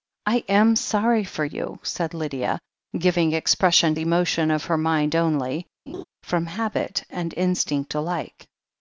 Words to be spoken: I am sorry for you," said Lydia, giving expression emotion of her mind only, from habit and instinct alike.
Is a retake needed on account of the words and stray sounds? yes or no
yes